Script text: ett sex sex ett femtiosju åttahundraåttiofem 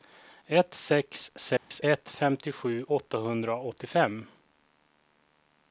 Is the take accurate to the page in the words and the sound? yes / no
no